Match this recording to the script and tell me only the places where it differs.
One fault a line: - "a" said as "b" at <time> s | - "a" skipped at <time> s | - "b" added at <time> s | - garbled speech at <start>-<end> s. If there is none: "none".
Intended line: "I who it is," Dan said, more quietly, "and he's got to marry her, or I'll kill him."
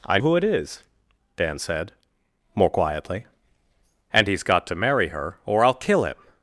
none